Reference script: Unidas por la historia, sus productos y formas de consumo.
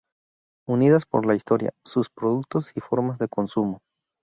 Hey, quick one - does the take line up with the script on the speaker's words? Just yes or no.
yes